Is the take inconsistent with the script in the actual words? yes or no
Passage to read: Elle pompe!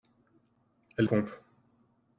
no